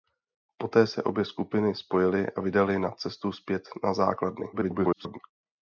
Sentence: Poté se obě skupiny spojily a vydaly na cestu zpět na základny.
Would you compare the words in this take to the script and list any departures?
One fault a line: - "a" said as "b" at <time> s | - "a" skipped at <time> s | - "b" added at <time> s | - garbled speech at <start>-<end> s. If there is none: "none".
- garbled speech at 4.5-5.2 s